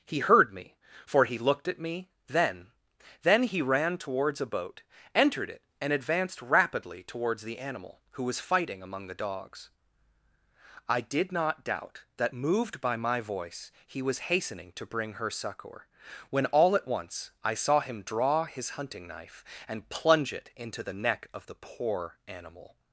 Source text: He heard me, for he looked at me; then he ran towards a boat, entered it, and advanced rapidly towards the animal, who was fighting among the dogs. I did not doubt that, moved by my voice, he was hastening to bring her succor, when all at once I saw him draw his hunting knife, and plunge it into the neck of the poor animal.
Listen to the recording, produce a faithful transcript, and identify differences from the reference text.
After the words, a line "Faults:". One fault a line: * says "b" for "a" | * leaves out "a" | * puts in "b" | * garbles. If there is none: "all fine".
He heard me, for he looked at me; then then he ran towards a boat, entered it, and advanced rapidly towards the animal, who was fighting among the dogs. I did not doubt that, moved by my voice, he was hastening to bring her succor, when all at once I saw him draw his hunting knife, and plunge it into the neck of the poor animal.
Faults:
* puts in "then"